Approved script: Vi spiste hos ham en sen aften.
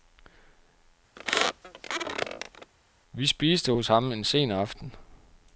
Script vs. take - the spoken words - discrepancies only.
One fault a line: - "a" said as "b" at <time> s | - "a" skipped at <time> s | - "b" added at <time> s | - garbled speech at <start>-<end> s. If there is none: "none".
none